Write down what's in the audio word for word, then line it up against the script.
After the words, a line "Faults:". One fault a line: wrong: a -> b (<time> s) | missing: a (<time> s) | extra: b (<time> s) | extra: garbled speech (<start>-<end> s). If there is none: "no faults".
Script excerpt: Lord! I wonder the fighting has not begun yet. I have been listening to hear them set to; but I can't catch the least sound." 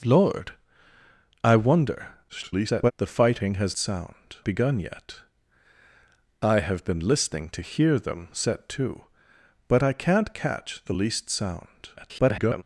Lord! I wonder [garbled] the fighting has sound begun yet. I have been listening to hear them set to; but I can't catch the least sound." [garbled]
Faults:
extra: garbled speech (2.3-2.9 s)
wrong: not -> sound (3.8 s)
extra: garbled speech (12.0-12.6 s)